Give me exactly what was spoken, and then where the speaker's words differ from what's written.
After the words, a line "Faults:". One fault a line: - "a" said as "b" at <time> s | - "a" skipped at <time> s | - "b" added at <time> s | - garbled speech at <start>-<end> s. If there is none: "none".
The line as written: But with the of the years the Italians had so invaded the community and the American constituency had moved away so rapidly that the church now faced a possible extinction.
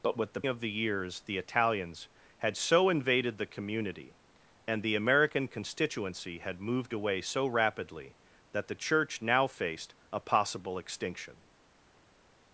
But with the of the years the Italians had so invaded the community and the American constituency had moved away so rapidly that the church now faced a possible extinction.
Faults:
none